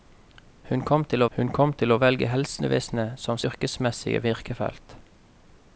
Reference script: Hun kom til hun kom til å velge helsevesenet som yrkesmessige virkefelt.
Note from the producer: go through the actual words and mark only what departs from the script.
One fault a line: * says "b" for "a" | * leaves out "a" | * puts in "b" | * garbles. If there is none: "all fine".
all fine